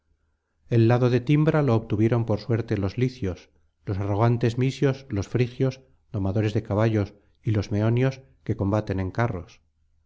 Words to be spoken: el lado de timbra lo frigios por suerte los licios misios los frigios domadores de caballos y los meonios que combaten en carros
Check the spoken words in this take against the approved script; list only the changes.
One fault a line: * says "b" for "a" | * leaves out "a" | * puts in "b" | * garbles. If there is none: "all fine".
* says "obtuvieron" for "frigios"
* puts in "los arrogantes"